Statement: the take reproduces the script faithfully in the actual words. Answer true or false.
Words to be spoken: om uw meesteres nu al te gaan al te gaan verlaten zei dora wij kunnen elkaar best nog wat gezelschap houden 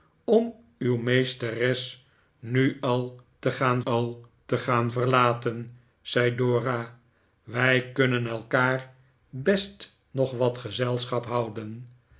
true